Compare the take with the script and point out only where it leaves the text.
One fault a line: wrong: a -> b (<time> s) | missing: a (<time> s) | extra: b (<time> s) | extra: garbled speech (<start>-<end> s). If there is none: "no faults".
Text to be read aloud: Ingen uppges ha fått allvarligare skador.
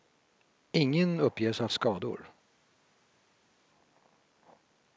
missing: fått allvarligare (1.7 s)